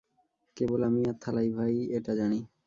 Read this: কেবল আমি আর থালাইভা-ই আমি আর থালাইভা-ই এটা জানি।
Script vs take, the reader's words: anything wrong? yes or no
yes